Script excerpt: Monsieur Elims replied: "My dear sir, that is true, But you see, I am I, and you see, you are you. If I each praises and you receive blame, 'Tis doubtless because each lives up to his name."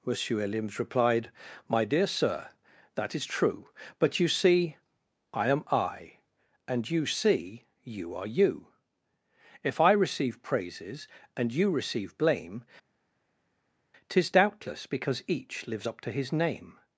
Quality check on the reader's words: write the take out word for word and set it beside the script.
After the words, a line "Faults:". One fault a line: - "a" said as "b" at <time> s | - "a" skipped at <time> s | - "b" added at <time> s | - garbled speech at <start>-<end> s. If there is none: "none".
Monsieur Elims replied: "My dear sir, that is true, But you see, I am I, and you see, you are you. If I receive praises and you receive blame, 'Tis doubtless because each lives up to his name."
Faults:
- "each" said as "receive" at 9.9 s